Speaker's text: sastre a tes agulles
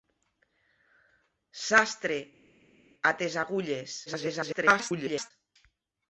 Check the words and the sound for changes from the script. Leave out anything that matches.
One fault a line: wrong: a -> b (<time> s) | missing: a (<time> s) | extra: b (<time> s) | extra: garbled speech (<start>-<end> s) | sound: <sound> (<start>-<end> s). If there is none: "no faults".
extra: garbled speech (4.1-5.3 s)